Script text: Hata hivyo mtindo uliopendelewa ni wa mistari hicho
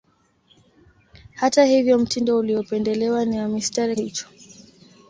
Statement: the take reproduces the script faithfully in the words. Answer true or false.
true